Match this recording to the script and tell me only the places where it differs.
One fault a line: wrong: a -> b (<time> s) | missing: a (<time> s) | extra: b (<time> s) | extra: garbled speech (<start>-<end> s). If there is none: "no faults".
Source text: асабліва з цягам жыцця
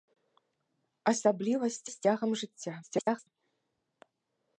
extra: з (1.9 s)
extra: garbled speech (2.8-3.3 s)